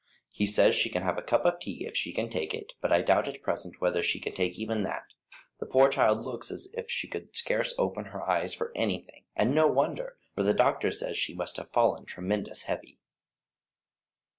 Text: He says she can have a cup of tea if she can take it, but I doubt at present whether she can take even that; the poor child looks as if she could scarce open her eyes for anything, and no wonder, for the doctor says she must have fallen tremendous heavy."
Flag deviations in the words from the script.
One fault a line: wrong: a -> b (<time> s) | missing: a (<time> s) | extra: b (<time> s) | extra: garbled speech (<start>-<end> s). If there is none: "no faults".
no faults